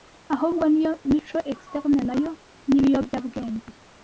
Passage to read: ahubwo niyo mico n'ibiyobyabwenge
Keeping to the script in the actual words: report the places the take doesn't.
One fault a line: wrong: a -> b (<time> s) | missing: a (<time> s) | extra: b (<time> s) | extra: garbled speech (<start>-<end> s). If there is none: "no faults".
extra: externe nayo (1.5 s)